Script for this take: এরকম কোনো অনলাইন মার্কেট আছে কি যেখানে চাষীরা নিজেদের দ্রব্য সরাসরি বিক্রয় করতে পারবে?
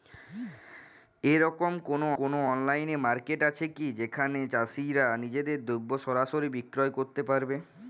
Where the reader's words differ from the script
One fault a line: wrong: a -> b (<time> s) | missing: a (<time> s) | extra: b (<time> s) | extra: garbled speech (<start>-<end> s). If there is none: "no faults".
extra: কোনো (2.2 s)